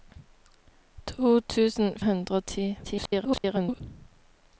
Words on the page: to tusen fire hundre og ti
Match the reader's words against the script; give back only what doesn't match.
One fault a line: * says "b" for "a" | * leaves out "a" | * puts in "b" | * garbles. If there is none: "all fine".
* leaves out "fire"
* garbles